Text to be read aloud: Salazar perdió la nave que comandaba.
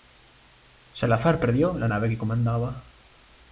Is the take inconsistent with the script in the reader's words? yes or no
no